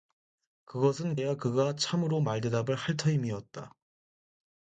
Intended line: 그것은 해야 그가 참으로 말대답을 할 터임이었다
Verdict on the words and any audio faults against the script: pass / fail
pass